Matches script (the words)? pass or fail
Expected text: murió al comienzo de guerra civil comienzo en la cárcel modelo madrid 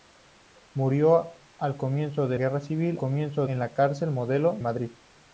pass